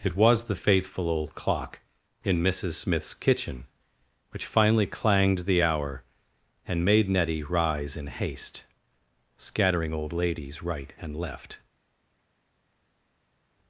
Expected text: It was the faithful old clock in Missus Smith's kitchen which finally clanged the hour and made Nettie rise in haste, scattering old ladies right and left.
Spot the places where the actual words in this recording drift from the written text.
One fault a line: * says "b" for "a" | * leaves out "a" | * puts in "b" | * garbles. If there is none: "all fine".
all fine